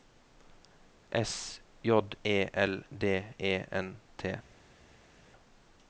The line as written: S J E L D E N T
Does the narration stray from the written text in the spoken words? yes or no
no